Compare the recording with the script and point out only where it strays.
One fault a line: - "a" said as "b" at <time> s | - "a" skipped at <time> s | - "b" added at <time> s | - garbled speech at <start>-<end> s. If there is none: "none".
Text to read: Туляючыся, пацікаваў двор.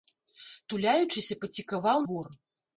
none